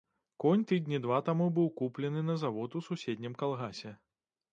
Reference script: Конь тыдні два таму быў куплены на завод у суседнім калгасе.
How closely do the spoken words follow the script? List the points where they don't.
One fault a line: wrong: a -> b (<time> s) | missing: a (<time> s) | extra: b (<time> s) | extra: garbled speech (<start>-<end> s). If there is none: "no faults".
no faults